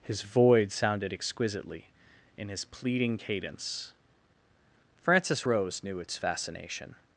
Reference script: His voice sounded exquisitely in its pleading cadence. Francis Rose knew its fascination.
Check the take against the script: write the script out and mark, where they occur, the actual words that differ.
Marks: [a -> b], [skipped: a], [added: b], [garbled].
His [voice -> void] sounded exquisitely in [its -> his] pleading cadence. Francis Rose knew its fascination.